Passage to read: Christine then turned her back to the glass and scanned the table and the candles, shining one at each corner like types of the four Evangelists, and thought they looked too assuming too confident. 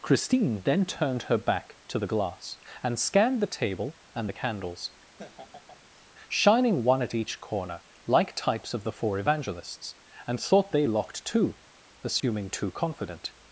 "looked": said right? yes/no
no